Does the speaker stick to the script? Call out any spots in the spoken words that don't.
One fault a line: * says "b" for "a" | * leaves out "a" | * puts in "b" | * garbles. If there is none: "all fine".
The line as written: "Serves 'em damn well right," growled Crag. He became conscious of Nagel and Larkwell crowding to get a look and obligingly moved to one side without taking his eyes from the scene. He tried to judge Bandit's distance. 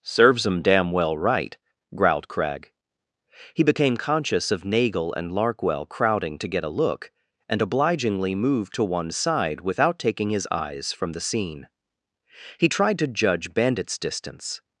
all fine